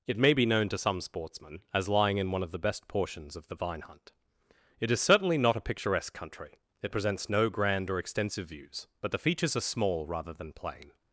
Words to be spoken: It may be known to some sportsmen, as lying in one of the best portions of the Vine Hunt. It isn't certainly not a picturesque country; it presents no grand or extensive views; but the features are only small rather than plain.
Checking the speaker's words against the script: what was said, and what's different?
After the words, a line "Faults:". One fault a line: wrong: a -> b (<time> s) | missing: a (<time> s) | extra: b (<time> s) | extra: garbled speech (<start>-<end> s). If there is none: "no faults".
It may be known to some sportsmen, as lying in one of the best portions of the Vine Hunt. It is certainly not a picturesque country; it presents no grand or extensive views; but the features are small rather than plain.
Faults:
wrong: isn't -> is (4.9 s)
missing: only (9.7 s)